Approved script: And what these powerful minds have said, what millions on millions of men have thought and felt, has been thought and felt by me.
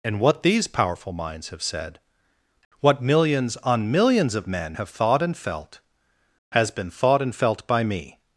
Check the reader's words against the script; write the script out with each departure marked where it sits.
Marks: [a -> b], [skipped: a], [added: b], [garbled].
And what these powerful minds have said, what millions on millions of men have thought and felt, has been thought and felt by me.